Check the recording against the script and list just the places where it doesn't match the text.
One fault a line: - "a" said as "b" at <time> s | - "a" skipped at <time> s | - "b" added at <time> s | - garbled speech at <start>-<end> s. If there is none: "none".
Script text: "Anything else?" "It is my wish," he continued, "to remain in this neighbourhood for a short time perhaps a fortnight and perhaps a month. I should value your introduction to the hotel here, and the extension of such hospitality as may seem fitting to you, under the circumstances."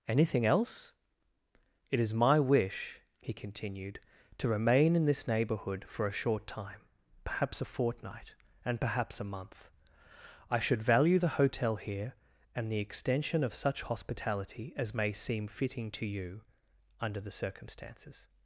- "your introduction to" skipped at 11.2 s